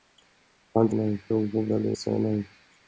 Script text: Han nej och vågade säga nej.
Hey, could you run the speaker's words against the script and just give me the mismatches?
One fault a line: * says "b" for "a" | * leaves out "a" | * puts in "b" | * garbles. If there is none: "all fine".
all fine